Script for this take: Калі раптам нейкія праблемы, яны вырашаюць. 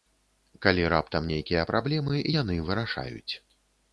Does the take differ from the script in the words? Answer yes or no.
no